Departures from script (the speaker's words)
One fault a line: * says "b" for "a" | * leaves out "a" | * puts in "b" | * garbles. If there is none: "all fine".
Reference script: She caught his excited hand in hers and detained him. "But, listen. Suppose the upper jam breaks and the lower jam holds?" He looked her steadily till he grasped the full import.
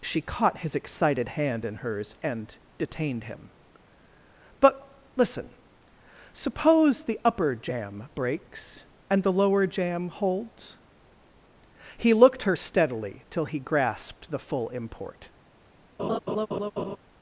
all fine